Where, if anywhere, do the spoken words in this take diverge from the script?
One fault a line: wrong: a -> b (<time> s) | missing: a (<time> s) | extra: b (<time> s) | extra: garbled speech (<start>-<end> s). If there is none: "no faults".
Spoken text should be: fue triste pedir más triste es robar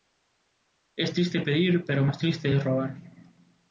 wrong: fue -> es (1.0 s)
extra: pero (1.8 s)